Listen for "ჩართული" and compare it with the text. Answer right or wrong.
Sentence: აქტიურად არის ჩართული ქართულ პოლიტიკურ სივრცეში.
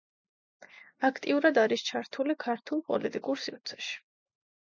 right